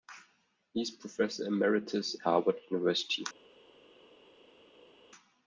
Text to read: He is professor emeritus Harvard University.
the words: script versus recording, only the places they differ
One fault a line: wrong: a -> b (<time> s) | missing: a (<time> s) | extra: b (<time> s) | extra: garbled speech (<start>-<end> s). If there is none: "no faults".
no faults